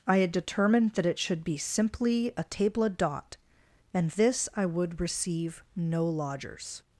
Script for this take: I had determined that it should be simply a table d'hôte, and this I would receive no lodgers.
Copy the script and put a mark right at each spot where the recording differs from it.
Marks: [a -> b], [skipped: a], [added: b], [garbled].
I had determined that it should be simply a table d'hôte, and this I would receive no lodgers.